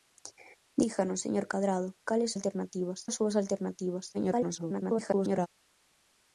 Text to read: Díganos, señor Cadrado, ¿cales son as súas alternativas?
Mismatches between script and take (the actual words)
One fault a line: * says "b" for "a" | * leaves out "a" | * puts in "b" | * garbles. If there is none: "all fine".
* says "alternativas" for "son"
* garbles